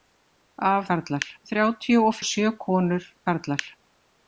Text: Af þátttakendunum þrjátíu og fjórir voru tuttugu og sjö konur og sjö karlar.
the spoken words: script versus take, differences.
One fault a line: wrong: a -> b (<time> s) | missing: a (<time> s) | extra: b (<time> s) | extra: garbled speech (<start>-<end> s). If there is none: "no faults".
wrong: þátttakendunum -> karlar (0.9 s)
missing: fjórir voru tuttugu (2.2 s)
missing: og sjö (3.1 s)